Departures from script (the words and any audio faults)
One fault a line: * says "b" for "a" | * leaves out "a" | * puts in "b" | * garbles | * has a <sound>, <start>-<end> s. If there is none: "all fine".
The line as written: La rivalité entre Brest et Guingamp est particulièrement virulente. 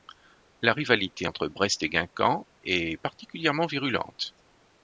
all fine